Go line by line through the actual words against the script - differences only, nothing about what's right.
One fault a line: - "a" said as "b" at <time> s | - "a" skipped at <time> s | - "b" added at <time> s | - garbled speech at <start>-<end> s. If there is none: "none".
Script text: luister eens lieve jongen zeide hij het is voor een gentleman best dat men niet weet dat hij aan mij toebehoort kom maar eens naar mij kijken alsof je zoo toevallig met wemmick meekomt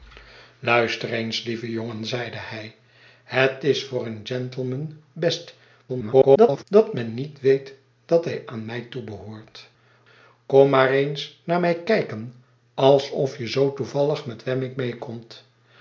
- garbled speech at 5.9-6.6 s